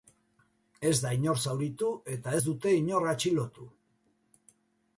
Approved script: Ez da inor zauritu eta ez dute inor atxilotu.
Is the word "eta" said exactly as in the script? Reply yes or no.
yes